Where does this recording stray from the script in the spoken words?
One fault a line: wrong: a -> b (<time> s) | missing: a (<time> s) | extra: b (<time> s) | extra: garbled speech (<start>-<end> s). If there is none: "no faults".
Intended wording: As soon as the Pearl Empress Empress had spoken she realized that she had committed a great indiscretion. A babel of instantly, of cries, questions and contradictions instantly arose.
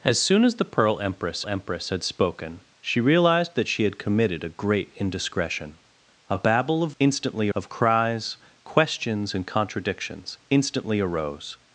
no faults